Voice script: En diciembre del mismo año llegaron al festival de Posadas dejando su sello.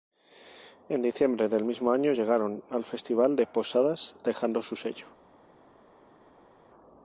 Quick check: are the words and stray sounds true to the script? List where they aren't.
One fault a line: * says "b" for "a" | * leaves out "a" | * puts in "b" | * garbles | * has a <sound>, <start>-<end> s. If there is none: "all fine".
all fine